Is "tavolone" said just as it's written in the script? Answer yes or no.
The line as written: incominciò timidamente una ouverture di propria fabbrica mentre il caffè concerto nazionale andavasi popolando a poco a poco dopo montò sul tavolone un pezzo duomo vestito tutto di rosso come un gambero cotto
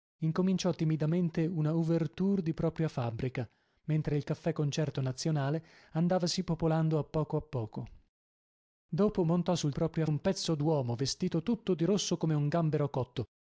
no